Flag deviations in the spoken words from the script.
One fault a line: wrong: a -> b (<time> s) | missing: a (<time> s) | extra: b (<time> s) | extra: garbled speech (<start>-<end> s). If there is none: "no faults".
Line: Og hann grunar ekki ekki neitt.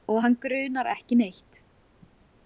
missing: ekki (1.2 s)